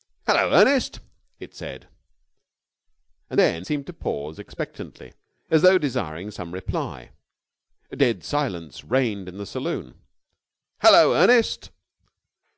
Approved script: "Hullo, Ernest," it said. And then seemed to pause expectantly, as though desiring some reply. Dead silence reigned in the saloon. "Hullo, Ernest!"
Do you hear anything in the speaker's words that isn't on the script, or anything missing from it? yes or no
no